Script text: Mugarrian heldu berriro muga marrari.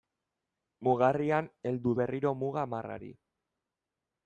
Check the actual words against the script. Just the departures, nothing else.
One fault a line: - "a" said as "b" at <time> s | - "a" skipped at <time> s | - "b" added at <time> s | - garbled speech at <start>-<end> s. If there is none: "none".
none